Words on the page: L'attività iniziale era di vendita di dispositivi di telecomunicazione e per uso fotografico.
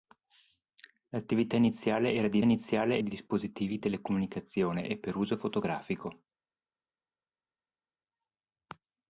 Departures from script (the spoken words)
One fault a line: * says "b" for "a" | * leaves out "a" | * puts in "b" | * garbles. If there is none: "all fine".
* says "iniziale" for "vendita"